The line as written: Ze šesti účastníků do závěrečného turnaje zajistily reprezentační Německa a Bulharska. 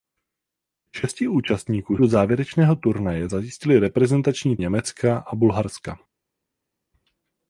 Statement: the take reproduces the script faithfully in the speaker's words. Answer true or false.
true